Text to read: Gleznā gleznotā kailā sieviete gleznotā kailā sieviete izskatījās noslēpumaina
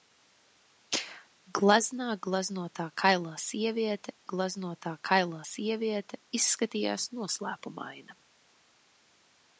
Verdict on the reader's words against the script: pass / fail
pass